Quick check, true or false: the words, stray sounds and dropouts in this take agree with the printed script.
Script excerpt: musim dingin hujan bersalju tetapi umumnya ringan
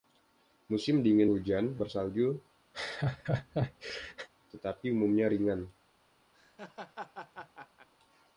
false